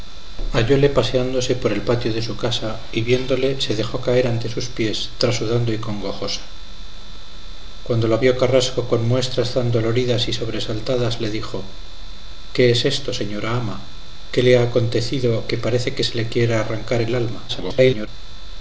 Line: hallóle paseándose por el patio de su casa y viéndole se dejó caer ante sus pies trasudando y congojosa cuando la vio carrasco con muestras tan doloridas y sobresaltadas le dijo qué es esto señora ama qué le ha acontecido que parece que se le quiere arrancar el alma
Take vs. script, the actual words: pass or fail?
fail